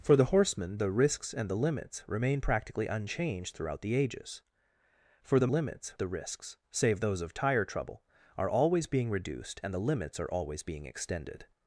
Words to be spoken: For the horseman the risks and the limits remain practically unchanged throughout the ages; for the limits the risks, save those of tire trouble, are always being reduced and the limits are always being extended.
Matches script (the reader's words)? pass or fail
pass